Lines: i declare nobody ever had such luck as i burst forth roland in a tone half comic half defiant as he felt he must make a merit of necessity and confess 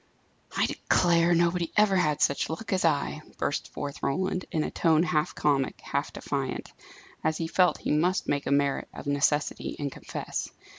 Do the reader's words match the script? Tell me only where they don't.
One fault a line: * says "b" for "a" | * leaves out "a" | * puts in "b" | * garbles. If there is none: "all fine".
all fine